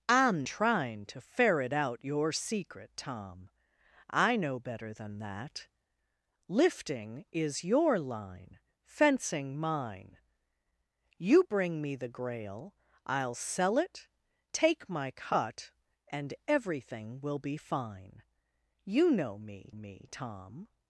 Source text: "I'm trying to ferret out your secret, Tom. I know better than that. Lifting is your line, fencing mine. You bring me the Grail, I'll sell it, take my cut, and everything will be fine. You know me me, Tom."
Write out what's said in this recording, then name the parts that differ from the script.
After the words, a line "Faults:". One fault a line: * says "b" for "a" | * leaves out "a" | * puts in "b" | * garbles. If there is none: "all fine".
"I'm trying to ferret out your secret, Tom. I know better than that. Lifting is your line, fencing mine. You bring me the Grail, I'll sell it, take my cut, and everything will be fine. You know me me, Tom."
Faults:
all fine